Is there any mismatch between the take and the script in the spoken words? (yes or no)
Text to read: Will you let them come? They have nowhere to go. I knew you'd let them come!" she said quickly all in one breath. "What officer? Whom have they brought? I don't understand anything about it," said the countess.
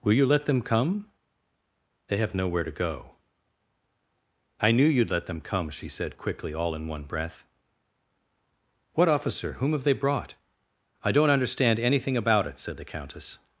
no